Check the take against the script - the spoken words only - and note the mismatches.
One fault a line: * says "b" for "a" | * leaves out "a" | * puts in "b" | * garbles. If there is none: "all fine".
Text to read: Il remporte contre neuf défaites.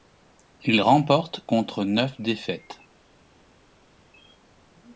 all fine